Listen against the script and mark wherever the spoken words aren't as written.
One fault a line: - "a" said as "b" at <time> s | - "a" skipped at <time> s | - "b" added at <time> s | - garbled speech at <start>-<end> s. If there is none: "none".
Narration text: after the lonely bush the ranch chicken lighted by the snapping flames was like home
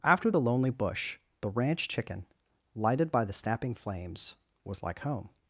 none